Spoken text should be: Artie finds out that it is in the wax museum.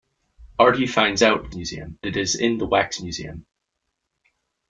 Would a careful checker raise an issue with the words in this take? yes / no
yes